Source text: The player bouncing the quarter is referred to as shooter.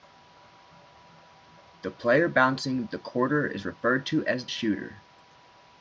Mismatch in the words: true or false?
false